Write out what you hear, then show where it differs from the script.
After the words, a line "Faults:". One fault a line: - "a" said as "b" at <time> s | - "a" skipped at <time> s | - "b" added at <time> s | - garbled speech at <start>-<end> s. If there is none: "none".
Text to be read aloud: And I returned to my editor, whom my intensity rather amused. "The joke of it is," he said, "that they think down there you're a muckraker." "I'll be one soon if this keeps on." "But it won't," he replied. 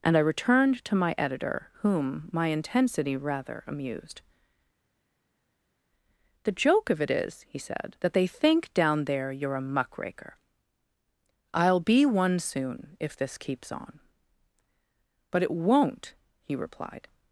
And I returned to my editor, whom my intensity rather amused. "The joke of it is," he said, "that they think down there you're a muckraker." "I'll be one soon if this keeps on." "But it won't," he replied.
Faults:
none